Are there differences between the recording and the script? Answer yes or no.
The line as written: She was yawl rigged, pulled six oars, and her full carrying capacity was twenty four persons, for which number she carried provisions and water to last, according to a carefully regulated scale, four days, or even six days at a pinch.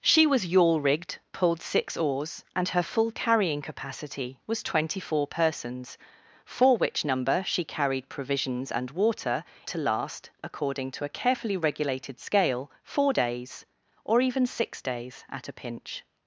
no